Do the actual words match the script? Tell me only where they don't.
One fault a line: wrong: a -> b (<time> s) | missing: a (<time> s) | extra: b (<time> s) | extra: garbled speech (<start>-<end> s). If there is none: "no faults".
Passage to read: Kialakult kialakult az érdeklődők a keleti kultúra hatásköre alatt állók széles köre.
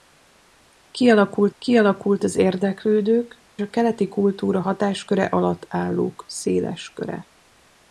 no faults